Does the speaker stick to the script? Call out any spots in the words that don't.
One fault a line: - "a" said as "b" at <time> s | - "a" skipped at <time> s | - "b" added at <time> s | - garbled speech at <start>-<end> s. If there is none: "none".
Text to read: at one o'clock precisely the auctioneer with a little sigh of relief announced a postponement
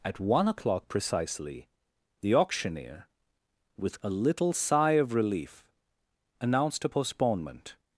none